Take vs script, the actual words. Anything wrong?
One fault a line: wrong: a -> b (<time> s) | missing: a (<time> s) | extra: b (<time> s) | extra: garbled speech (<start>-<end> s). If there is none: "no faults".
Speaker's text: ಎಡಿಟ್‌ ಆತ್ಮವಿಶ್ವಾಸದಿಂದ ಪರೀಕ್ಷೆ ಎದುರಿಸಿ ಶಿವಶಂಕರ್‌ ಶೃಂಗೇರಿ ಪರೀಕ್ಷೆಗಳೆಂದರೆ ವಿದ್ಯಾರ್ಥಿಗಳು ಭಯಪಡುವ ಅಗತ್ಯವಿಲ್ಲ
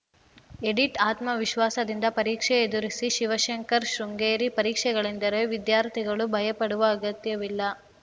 no faults